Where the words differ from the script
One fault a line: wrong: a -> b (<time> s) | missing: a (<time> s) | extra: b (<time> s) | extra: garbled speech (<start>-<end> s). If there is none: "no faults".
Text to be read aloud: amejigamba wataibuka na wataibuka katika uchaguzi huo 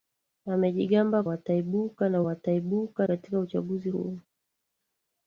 no faults